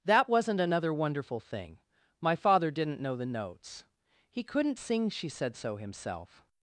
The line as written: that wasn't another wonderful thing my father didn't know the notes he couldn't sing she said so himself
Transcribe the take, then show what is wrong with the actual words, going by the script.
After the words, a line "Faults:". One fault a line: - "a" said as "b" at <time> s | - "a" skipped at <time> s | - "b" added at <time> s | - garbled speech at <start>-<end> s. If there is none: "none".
that wasn't another wonderful thing my father didn't know the notes he couldn't sing she said so himself
Faults:
none